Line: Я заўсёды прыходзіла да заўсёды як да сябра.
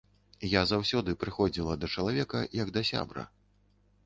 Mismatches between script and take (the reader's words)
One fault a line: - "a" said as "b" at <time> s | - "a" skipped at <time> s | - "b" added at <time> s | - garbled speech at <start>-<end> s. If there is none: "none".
- "заўсёды" said as "чалавека" at 2.0 s